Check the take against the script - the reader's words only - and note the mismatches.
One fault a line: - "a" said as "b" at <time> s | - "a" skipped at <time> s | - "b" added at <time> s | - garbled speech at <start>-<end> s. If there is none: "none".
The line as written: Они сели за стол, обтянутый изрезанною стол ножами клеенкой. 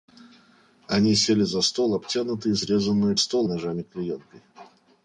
none